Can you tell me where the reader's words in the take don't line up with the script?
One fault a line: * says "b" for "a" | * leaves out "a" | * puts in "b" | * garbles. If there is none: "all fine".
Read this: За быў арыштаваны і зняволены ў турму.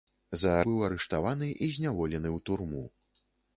all fine